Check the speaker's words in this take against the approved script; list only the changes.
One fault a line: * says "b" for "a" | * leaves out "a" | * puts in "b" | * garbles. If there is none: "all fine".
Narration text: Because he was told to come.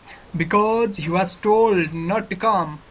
* puts in "not"